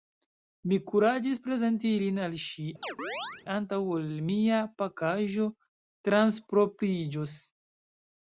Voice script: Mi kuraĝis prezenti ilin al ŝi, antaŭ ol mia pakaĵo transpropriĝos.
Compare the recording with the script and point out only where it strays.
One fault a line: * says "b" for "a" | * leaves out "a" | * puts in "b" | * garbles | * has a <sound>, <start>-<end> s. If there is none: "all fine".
* has a chirp, 2.8-3.5 s